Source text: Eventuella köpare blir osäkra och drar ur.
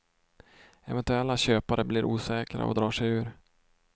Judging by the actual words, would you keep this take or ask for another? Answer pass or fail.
fail